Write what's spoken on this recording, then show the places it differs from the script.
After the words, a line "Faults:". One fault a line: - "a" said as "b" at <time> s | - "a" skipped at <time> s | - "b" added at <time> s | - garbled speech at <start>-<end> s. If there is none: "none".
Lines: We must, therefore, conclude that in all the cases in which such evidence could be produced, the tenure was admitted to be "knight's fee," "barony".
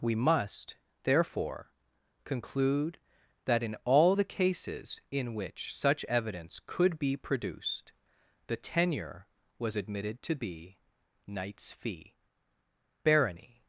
We must, therefore, conclude that in all the cases in which such evidence could be produced, the tenure was admitted to be "knight's fee," "barony".
Faults:
none